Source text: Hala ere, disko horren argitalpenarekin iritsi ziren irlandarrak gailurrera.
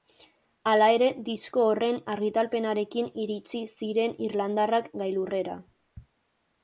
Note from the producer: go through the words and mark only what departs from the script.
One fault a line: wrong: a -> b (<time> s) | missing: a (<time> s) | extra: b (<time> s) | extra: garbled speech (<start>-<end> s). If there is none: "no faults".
no faults